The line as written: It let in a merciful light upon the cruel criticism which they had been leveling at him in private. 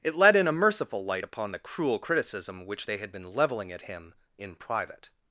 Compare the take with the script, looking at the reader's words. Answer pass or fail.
pass